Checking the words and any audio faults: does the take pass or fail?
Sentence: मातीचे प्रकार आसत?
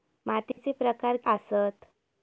fail